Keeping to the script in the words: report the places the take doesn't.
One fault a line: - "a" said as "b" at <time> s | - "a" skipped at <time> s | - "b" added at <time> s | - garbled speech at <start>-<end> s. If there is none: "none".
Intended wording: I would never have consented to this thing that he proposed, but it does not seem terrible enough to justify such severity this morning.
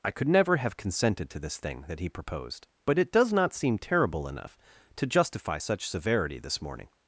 - "would" said as "could" at 0.1 s